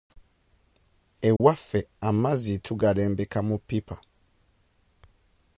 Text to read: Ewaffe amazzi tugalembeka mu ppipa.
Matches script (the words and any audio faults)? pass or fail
fail